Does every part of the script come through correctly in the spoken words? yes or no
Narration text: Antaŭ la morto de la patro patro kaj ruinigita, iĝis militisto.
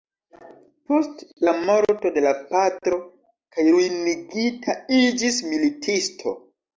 no